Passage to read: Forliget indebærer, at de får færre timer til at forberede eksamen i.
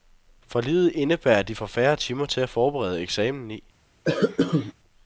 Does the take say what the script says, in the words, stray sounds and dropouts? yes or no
no